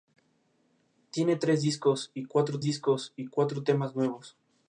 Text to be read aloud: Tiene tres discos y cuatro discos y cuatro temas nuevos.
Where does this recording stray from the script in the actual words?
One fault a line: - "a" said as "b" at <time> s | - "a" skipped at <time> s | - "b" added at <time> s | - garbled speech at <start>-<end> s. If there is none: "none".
none